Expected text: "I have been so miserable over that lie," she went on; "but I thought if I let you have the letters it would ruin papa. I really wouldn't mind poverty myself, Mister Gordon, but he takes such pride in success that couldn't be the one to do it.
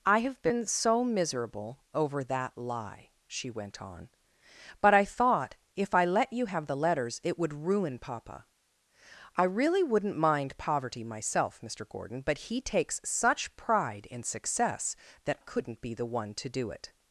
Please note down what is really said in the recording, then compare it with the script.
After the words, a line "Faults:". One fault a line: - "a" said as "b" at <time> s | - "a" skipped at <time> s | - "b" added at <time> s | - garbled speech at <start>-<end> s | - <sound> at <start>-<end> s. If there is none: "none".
"I have been so miserable over that lie," she went on; "but I thought if I let you have the letters it would ruin papa. I really wouldn't mind poverty myself, Mister Gordon, but he takes such pride in success that couldn't be the one to do it.
Faults:
none